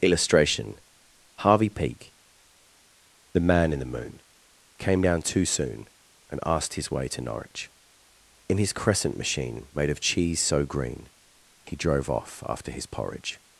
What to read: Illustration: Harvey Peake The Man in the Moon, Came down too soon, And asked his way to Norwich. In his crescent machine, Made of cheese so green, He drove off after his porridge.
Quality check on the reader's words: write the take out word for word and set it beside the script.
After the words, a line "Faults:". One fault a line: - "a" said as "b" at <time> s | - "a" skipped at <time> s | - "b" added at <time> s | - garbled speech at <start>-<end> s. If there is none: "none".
Illustration: Harvey Peake The Man in the Moon, Came down too soon, And asked his way to Norwich. In his crescent machine, Made of cheese so green, He drove off after his porridge.
Faults:
none